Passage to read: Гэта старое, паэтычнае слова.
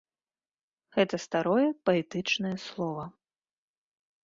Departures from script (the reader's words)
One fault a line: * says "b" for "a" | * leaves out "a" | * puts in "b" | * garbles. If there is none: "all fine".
all fine